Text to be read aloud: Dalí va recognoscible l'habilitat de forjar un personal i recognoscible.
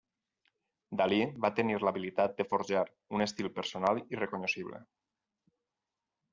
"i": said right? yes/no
yes